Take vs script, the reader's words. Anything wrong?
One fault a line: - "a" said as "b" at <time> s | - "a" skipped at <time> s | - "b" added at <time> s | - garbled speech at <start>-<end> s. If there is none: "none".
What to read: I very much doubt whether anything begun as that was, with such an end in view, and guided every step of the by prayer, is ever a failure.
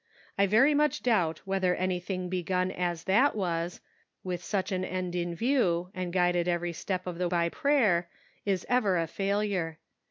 none